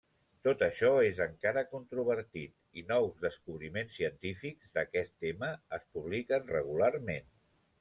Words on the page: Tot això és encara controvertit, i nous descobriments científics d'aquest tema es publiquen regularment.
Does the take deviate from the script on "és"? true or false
false